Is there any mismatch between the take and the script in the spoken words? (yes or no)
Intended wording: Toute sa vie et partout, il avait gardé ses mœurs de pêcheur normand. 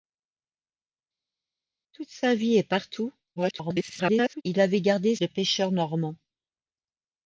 yes